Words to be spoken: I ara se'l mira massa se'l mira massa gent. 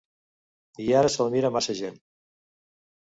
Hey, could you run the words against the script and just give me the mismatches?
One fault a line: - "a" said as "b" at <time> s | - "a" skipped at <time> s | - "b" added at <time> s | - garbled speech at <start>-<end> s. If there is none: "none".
- "se'l mira massa" skipped at 1.8 s